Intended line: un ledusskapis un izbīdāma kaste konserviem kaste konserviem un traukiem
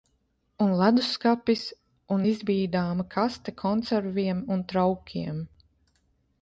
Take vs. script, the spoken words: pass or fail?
fail